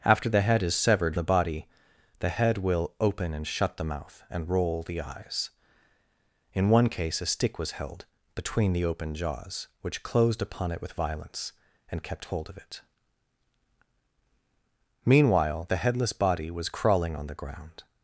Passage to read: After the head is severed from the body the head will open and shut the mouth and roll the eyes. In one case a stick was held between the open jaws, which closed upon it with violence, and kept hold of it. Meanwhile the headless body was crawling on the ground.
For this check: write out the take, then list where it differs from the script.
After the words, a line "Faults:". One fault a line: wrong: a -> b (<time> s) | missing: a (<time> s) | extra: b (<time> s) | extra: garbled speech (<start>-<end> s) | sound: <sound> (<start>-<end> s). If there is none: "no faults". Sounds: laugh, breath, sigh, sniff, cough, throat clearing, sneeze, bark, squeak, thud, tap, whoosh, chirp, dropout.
After the head is severed the body the head will open and shut the mouth and roll the eyes. In one case a stick was held between the open jaws, which closed upon it with violence, and kept hold of it. Meanwhile the headless body was crawling on the ground.
Faults:
missing: from (1.2 s)